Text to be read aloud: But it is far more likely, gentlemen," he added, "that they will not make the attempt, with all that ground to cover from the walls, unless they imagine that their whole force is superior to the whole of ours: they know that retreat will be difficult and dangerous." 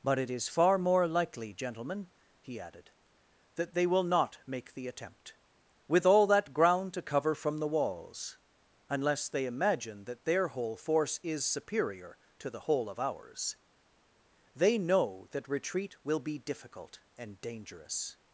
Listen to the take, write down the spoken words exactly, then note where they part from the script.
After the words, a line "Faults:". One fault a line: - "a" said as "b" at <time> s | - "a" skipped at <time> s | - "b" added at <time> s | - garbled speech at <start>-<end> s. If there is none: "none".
But it is far more likely, gentlemen," he added, "that they will not make the attempt, with all that ground to cover from the walls, unless they imagine that their whole force is superior to the whole of ours: they know that retreat will be difficult and dangerous."
Faults:
none